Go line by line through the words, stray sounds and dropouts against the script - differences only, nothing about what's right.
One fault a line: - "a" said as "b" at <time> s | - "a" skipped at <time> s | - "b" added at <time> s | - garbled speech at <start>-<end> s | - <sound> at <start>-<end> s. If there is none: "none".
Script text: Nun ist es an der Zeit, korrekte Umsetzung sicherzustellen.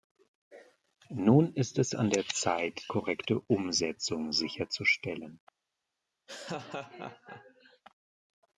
- laugh at 6.3-7.8 s